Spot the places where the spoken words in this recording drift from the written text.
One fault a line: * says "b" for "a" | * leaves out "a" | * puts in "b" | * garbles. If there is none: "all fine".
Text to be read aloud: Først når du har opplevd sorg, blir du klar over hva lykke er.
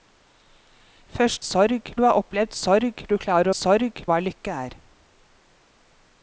* says "sorg" for "når"
* leaves out "blir"
* says "sorg" for "over"